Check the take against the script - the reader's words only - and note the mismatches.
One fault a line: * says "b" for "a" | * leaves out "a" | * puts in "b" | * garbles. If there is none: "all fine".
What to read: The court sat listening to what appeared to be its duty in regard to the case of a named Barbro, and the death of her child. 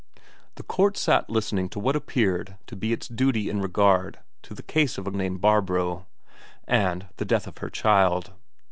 all fine